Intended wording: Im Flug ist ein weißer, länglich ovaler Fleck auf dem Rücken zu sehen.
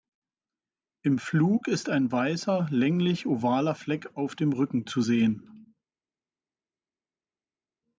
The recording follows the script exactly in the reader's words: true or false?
true